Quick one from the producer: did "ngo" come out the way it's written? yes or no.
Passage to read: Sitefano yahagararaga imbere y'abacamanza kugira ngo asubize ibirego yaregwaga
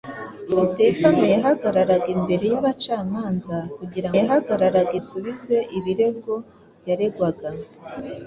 no